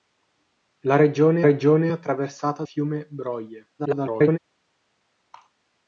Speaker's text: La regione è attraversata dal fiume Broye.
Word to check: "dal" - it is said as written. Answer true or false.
false